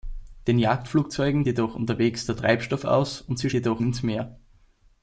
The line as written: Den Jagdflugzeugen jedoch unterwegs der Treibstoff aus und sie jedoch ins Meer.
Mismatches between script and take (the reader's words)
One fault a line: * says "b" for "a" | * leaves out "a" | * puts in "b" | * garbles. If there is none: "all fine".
all fine